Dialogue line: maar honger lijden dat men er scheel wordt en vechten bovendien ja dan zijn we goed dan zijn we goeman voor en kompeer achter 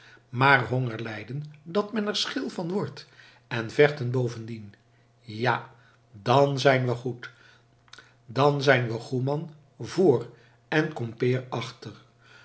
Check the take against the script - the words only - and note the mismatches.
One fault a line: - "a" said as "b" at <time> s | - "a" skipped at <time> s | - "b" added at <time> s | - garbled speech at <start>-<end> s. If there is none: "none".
- "van" added at 2.5 s